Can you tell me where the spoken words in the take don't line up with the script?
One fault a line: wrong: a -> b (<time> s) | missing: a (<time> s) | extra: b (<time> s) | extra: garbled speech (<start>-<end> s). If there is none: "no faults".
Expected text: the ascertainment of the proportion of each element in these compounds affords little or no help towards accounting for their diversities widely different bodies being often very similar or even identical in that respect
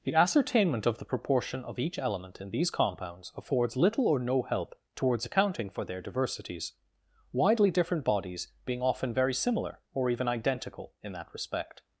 no faults